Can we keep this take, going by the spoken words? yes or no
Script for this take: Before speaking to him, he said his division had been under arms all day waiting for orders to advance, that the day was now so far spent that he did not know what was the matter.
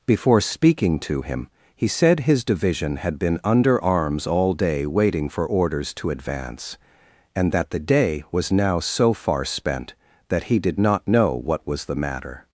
no